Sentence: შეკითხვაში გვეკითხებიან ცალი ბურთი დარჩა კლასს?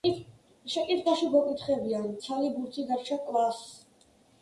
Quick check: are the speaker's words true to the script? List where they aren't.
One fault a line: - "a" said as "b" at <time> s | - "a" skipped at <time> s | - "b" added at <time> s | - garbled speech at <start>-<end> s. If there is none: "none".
none